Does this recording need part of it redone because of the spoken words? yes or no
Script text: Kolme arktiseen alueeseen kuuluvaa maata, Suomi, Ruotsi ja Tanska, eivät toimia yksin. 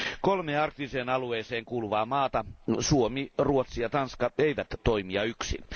no